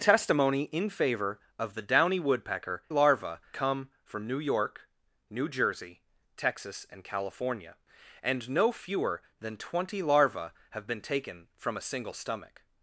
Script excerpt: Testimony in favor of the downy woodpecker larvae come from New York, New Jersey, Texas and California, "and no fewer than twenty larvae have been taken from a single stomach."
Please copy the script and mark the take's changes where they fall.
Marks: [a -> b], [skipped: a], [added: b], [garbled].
Testimony in favor of the downy woodpecker larvae come from New York, New Jersey, Texas and California, "and no fewer than twenty larvae have been taken from a single stomach."